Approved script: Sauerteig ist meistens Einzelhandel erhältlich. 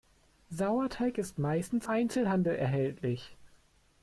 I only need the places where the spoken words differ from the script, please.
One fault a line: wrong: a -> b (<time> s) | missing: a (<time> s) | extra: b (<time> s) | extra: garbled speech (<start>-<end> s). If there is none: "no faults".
no faults